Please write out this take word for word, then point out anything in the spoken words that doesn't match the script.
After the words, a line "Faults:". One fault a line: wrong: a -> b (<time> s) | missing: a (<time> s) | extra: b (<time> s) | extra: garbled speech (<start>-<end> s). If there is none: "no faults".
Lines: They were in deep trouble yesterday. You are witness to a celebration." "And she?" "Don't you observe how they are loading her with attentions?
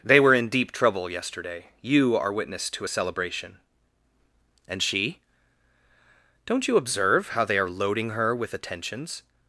They were in deep trouble yesterday. You are witness to a celebration." "And she?" "Don't you observe how they are loading her with attentions?
Faults:
no faults